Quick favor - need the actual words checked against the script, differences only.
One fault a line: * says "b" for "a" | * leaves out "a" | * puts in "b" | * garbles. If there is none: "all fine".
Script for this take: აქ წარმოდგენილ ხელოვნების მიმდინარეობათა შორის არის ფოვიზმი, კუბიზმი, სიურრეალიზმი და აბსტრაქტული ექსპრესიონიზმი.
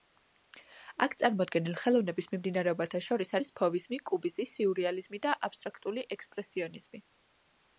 all fine